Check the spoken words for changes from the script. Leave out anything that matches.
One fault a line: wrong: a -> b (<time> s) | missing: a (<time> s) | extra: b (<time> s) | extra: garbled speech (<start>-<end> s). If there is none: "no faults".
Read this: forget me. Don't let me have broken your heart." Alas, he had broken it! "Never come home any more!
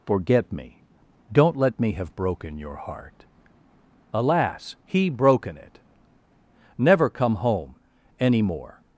missing: had (5.1 s)